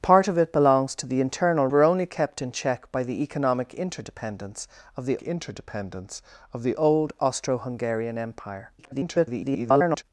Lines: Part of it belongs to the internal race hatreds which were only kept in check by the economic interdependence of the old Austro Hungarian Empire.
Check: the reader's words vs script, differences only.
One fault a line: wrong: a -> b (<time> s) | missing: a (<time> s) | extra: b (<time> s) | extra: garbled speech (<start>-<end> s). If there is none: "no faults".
missing: race hatreds which (1.7 s)
extra: interdependence of the (5.2 s)
extra: garbled speech (8.8-10.0 s)